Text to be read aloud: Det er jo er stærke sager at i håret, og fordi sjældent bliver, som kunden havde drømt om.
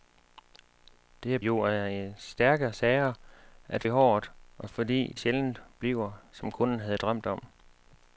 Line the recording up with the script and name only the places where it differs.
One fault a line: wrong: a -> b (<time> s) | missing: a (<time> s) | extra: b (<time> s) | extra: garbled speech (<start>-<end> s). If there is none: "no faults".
no faults